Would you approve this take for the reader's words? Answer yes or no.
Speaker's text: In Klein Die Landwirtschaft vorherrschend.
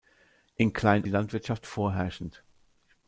yes